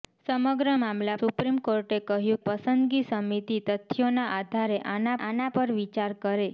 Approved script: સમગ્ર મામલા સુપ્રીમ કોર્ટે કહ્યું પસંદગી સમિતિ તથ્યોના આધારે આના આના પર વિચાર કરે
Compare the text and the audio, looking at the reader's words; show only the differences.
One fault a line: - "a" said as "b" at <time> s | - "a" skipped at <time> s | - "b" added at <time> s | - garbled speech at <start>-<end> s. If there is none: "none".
none